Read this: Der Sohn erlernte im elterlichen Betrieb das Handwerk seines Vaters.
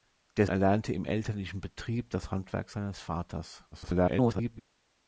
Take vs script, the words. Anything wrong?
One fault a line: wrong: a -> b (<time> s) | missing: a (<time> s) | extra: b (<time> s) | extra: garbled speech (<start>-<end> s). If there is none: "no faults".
missing: Sohn (0.5 s)
extra: garbled speech (3.7-4.6 s)